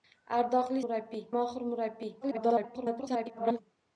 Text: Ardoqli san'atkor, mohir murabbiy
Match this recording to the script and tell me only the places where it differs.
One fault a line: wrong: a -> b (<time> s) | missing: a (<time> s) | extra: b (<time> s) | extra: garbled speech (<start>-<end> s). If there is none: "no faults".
wrong: san'atkor -> murabbiy (0.8 s)
extra: garbled speech (2.2-3.6 s)